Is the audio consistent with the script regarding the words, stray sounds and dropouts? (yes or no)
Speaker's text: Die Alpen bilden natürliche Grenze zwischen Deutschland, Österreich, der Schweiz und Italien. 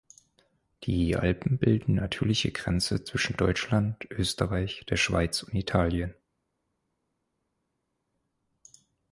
yes